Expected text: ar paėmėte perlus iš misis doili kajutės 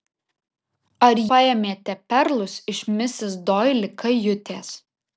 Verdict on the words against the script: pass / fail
pass